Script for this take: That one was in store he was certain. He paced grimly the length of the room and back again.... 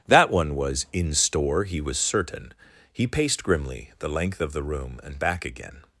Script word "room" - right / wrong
right